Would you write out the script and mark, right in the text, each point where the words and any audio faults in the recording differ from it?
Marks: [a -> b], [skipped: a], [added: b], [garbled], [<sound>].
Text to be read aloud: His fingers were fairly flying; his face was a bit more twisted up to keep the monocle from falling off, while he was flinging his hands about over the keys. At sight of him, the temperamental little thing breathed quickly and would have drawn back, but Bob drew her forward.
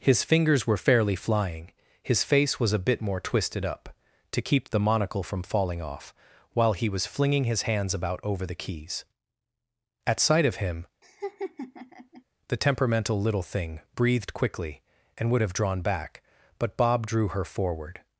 His fingers were fairly flying; his face was a bit more twisted up to keep the monocle from falling off, while he was flinging his hands about over the keys. At sight of him, [laugh] the temperamental little thing breathed quickly and would have drawn back, but Bob drew her forward.